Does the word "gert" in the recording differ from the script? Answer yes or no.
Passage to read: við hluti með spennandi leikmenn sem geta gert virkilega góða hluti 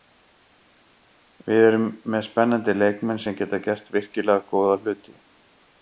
no